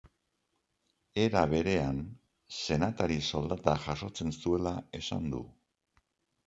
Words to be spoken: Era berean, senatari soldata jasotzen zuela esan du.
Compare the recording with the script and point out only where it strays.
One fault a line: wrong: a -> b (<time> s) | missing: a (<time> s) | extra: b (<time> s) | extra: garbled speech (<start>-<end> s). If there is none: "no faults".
no faults